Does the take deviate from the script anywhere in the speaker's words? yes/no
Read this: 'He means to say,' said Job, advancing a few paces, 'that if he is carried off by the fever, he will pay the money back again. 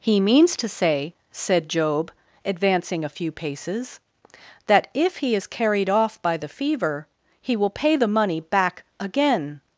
no